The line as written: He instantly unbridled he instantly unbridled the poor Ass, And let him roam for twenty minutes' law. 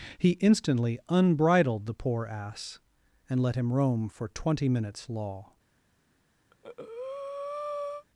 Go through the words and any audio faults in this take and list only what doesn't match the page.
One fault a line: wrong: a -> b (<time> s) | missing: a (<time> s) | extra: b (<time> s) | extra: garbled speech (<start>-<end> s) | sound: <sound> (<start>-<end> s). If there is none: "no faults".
missing: he instantly unbridled (1.9 s)
sound: breath (6.5-8.0 s)